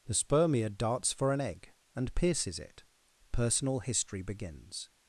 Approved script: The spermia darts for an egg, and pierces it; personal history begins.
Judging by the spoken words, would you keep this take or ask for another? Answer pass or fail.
pass